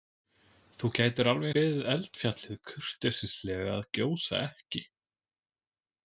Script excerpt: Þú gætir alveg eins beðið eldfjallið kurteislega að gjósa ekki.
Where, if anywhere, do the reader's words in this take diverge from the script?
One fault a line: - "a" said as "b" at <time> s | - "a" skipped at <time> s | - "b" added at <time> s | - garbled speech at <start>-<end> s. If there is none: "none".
- "eins" skipped at 1.5 s